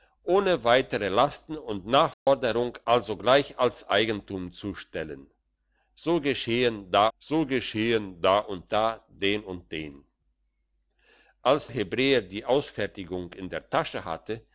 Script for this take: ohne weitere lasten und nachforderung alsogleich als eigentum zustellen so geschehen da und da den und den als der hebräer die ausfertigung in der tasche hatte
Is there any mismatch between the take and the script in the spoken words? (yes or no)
yes